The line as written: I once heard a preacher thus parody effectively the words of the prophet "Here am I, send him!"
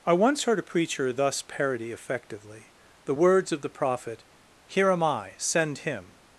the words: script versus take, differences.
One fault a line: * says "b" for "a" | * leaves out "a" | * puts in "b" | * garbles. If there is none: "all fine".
all fine